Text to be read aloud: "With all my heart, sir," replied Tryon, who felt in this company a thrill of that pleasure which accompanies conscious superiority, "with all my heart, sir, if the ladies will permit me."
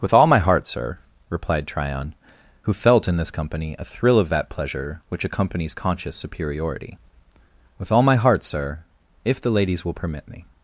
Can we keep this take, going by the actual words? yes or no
yes